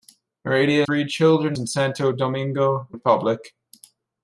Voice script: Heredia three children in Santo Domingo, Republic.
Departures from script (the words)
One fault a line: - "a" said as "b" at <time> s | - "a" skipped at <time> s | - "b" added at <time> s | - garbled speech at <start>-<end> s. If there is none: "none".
none